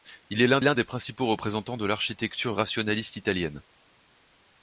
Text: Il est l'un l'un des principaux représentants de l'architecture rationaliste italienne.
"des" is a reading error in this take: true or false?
false